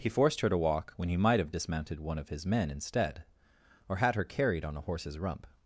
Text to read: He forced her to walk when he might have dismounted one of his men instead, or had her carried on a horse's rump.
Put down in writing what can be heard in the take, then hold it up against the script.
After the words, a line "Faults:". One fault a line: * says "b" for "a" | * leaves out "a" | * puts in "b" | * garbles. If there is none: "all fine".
He forced her to walk when he might have dismounted one of his men instead, or had her carried on a horse's rump.
Faults:
all fine